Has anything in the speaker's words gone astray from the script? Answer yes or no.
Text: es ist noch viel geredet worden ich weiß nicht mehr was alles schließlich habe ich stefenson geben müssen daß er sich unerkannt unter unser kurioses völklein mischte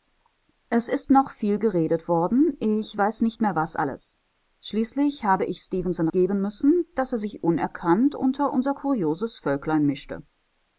no